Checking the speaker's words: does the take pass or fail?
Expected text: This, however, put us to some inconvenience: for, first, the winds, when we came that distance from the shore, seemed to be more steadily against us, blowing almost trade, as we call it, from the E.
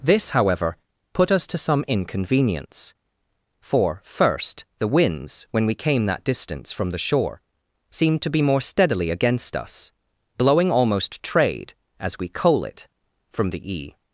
fail